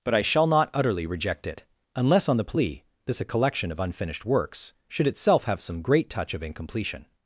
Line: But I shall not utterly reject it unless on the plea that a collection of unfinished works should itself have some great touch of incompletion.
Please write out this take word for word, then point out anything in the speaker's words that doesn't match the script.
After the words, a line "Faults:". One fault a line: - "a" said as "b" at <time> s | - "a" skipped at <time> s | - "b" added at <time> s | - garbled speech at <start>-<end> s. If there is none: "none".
But I shall not utterly reject it unless on the plea this a collection of unfinished works should itself have some great touch of incompletion.
Faults:
- "that" said as "this" at 3.0 s